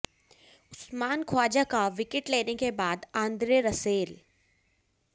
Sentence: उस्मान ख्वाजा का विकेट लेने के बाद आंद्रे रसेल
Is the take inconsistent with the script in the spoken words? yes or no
no